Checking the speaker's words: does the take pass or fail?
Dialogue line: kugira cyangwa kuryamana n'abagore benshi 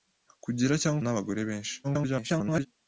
fail